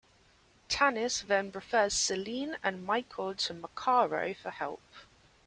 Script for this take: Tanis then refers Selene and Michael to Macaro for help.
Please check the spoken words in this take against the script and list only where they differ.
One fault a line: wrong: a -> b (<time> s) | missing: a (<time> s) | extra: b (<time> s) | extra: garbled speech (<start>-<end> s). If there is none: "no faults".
no faults